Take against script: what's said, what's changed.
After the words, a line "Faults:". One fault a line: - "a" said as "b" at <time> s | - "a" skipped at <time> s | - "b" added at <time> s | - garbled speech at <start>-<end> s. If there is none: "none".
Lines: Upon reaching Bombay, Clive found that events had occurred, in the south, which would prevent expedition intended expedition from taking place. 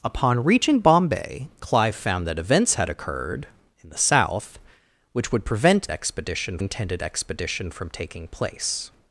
Upon reaching Bombay, Clive found that events had occurred, in the south, which would prevent expedition intended expedition from taking place.
Faults:
none